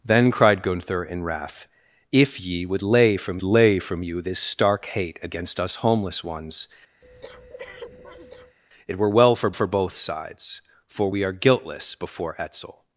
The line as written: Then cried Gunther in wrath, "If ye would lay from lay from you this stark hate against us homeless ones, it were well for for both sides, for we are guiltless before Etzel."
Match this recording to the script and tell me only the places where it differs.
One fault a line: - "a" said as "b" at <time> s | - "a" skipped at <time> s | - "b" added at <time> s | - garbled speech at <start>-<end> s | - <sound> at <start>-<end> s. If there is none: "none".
- breath at 7.0-8.6 s